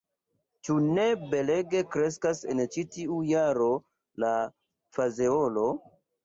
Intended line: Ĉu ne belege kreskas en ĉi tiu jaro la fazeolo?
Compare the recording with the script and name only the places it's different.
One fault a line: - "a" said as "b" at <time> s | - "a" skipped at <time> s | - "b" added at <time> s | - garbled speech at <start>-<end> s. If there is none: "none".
none